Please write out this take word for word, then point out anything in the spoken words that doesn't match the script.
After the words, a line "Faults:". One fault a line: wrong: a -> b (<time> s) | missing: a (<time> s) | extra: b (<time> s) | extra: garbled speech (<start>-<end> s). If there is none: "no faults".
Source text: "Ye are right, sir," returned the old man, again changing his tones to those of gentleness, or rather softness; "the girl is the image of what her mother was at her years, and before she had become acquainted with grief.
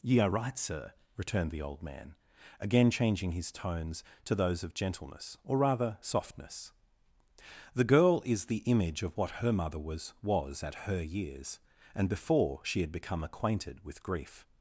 "Ye are right, sir," returned the old man, again changing his tones to those of gentleness, or rather softness; "the girl is the image of what her mother was was at her years, and before she had become acquainted with grief.
Faults:
extra: was (10.2 s)